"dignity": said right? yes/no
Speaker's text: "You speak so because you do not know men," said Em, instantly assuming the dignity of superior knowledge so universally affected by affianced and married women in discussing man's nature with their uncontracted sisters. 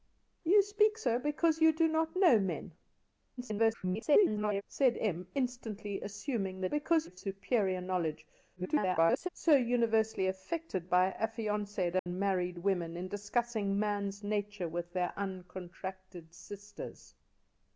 no